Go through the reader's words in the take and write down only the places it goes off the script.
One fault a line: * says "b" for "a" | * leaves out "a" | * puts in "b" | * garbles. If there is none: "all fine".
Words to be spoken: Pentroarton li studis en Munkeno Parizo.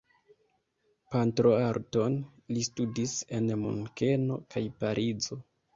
* puts in "kaj"